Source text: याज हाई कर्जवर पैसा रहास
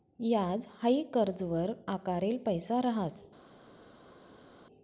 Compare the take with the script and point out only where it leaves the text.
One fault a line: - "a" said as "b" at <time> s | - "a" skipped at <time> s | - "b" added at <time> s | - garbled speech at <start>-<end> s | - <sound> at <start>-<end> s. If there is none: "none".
- "आकारेल" added at 1.9 s